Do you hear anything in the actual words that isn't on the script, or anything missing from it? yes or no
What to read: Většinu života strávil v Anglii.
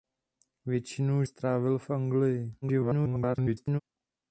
yes